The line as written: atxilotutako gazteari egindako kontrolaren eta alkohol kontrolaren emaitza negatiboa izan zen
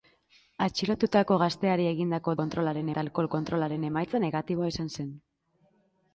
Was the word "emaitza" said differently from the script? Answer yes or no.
no